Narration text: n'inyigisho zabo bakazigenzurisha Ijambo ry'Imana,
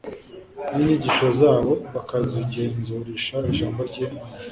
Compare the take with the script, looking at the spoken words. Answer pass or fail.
pass